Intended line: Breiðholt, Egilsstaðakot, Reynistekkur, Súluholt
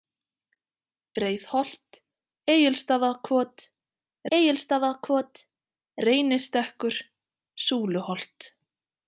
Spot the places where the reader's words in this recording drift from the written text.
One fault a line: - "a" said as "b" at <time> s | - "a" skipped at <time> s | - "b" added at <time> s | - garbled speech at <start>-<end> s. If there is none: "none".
- "Egilsstaðakot" added at 4.4 s